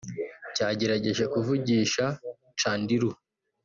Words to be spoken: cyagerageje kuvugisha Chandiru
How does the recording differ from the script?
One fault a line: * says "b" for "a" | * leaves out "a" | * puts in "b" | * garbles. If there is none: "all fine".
all fine